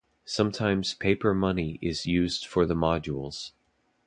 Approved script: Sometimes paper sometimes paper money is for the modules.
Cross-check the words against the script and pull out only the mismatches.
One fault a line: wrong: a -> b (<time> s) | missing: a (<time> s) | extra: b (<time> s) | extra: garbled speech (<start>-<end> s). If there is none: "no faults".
missing: sometimes paper (1.4 s)
extra: used (2.1 s)